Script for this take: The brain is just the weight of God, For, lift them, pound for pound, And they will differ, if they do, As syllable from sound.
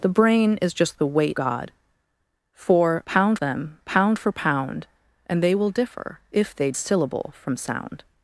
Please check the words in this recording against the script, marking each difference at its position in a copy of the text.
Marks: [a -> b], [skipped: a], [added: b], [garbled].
The brain is just the weight [skipped: of] God, For, [lift -> pound] them, pound for pound, And they will differ, if they [skipped: do, As] syllable from sound.